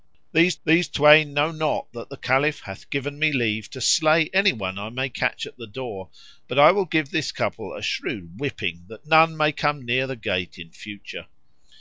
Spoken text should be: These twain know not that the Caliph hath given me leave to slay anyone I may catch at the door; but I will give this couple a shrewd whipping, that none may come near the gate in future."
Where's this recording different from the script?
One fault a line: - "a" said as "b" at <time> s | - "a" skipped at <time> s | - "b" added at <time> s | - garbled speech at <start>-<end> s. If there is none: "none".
- "these" added at 0.7 s